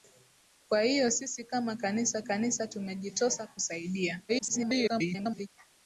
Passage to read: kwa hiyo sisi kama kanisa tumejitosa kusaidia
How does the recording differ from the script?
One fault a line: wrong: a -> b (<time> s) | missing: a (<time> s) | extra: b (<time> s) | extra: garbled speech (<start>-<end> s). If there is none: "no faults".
extra: kanisa (2.2 s)
extra: garbled speech (4.3-5.5 s)